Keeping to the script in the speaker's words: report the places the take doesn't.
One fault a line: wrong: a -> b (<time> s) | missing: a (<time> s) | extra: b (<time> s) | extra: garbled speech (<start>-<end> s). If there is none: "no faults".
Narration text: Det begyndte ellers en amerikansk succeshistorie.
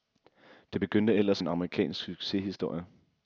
no faults